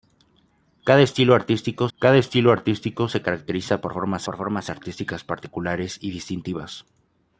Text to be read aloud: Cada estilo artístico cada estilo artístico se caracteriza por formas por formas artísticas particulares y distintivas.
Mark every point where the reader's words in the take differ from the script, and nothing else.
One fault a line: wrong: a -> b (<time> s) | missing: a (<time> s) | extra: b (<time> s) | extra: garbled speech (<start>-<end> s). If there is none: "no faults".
no faults